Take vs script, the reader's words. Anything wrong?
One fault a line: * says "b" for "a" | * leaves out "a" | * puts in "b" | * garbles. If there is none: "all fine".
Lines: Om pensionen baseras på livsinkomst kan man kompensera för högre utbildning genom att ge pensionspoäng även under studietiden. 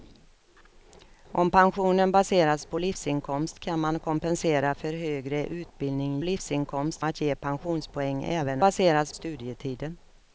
* says "livsinkomst" for "genom"
* says "baseras" for "under"